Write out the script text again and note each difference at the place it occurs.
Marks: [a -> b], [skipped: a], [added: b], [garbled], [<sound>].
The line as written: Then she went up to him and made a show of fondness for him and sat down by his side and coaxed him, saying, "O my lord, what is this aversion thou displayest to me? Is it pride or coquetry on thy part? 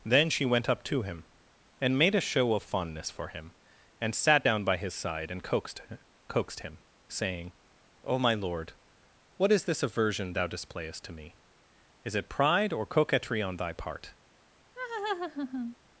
Then she went up to him and made a show of fondness for him and sat down by his side and coaxed [added: coaxed] him, saying, "O my lord, what is this aversion thou displayest to me? Is it pride or coquetry on thy part? [laugh]